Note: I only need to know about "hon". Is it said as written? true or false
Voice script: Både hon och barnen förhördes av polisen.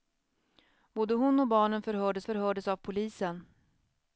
true